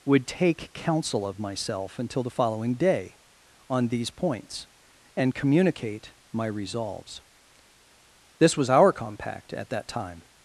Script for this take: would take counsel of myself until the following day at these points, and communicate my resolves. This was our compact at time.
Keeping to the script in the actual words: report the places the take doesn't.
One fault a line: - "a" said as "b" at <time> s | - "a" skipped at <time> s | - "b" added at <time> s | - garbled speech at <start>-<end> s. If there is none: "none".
- "at" said as "on" at 3.7 s
- "that" added at 9.7 s